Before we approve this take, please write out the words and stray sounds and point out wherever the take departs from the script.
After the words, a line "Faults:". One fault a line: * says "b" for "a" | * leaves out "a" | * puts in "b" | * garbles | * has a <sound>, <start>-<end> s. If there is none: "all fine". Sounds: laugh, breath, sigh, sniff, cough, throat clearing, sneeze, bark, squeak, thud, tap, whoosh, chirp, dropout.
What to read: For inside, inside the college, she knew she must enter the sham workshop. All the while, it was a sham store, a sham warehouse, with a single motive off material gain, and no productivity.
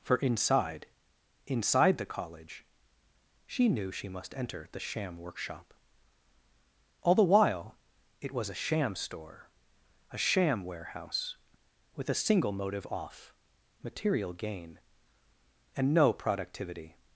For inside, inside the college, she knew she must enter the sham workshop. All the while, it was a sham store, a sham warehouse, with a single motive off material gain, and no productivity.
Faults:
all fine